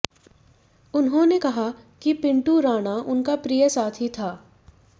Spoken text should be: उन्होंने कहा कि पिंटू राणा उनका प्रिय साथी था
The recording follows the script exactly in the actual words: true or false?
true